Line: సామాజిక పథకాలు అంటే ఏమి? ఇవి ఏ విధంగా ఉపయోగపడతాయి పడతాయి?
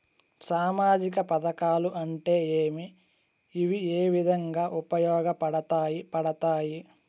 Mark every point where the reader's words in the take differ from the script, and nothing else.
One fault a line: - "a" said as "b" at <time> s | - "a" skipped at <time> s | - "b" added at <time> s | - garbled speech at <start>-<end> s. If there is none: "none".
none